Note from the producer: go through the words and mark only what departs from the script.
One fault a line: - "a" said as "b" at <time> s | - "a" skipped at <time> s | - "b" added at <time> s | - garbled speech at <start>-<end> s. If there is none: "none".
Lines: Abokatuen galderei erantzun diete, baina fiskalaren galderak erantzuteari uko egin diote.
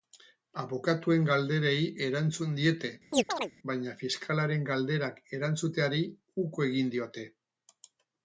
none